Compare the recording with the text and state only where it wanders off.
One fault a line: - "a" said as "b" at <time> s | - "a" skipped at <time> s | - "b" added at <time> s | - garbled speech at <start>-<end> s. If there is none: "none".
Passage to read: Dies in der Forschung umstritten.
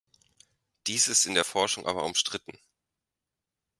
- "ist" added at 1.1 s
- "aber" added at 1.8 s